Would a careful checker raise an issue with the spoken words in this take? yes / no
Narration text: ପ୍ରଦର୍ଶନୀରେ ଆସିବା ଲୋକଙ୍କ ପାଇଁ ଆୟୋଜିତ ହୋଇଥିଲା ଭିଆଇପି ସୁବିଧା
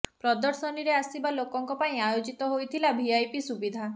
no